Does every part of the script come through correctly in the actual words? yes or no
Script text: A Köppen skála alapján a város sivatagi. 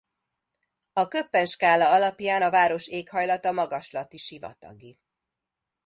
no